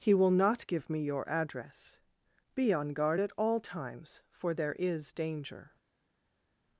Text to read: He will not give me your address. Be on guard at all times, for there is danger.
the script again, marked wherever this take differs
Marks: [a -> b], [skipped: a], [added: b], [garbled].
He will not give me your address. Be on guard at all times, for there is danger.